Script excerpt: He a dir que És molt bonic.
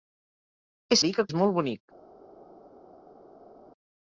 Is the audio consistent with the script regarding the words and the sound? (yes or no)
yes